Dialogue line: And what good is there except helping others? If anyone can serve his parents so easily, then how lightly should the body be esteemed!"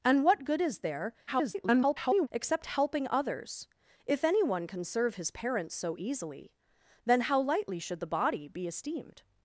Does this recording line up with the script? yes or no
no